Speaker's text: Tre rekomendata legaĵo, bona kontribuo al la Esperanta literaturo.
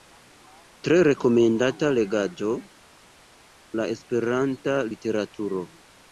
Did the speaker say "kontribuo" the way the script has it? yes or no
no